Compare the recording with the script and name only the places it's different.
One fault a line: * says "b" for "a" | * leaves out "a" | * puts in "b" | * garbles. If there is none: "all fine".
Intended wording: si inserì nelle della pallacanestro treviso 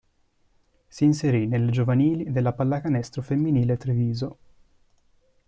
* puts in "giovanili"
* puts in "femminile"